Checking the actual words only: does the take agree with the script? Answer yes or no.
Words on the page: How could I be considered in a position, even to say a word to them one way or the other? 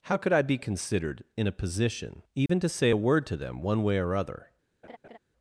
no